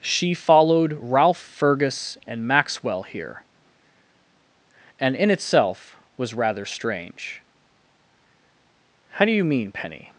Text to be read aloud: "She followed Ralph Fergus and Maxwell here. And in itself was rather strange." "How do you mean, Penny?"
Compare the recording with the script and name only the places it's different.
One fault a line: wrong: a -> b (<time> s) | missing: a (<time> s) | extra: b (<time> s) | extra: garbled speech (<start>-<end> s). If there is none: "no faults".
no faults